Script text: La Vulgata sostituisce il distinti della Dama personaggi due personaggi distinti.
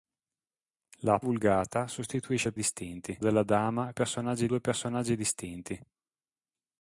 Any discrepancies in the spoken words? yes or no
no